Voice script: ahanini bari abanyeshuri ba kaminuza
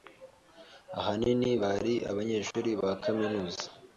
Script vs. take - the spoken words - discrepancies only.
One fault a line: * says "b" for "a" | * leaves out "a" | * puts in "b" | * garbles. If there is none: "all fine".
all fine